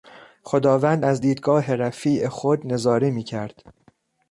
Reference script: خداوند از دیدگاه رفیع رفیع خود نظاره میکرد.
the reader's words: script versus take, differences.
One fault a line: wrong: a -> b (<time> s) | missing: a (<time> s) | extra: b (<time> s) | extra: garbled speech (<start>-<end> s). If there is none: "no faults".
missing: رفیع (2.3 s)